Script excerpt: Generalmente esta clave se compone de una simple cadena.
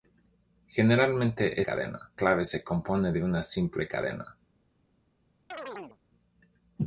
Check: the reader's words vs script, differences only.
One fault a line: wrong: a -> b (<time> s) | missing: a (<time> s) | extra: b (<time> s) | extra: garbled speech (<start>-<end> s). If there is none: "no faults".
wrong: esta -> cadena (1.6 s)